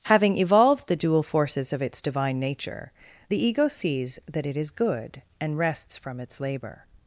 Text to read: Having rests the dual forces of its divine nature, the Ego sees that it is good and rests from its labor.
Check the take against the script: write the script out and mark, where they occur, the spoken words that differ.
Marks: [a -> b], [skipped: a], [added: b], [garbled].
Having [rests -> evolved] the dual forces of its divine nature, the Ego sees that it is good and rests from its labor.